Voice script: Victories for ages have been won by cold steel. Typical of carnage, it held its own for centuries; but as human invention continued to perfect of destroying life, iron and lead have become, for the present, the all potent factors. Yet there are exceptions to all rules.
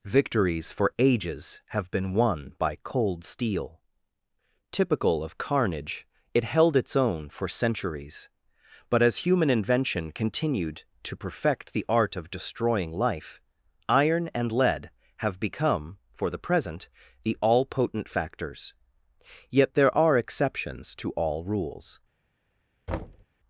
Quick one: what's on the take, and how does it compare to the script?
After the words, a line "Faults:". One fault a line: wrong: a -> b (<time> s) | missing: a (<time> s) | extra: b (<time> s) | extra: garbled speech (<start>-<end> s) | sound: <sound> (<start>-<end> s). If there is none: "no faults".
Victories for ages have been won by cold steel. Typical of carnage, it held its own for centuries; but as human invention continued to perfect the art of destroying life, iron and lead have become, for the present, the all potent factors. Yet there are exceptions to all rules.
Faults:
extra: the art (11.7 s)
sound: thud (22.9-23.3 s)